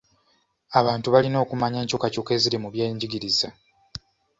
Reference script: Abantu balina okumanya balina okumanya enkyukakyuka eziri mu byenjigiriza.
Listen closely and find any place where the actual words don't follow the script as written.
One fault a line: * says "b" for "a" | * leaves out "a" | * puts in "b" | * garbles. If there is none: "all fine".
* leaves out "balina okumanya"